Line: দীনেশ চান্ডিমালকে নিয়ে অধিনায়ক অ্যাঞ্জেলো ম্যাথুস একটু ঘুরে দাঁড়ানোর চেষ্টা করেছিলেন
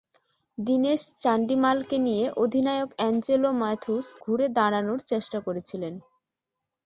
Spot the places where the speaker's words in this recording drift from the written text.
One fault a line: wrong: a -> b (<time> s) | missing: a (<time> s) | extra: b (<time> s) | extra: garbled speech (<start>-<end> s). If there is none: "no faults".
missing: একটু (4.1 s)